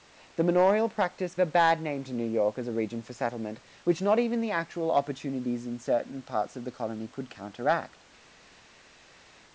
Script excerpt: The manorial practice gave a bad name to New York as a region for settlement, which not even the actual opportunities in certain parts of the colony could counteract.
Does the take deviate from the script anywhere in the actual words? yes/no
yes